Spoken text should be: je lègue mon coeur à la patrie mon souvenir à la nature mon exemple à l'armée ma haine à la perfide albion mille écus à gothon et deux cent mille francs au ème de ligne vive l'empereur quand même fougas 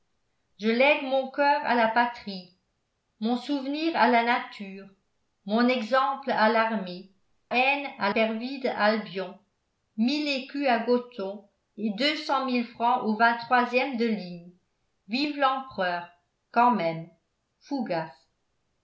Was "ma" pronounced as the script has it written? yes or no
no